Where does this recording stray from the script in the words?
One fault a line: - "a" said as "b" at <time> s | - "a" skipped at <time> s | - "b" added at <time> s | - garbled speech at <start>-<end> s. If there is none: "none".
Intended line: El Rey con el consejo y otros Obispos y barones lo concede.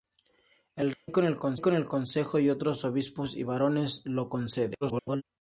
- garbled speech at 4.8-5.2 s